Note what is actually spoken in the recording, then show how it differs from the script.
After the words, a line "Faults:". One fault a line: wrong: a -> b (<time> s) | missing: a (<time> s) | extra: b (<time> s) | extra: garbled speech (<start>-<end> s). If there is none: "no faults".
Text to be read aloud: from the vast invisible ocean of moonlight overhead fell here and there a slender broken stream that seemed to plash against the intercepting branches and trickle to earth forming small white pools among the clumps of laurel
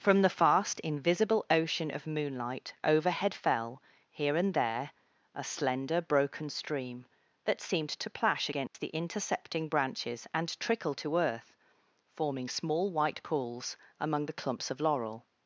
from the fast invisible ocean of moonlight overhead fell here and there a slender broken stream that seemed to plash against the intercepting branches and trickle to earth forming small white pools among the clumps of laurel
Faults:
wrong: vast -> fast (0.3 s)